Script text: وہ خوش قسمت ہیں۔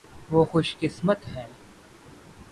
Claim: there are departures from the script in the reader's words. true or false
false